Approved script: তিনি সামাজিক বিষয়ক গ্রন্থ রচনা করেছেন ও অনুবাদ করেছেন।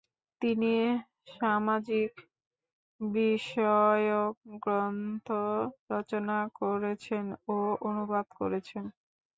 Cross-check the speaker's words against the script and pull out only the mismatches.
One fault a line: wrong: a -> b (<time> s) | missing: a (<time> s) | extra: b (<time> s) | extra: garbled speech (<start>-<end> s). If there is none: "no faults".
no faults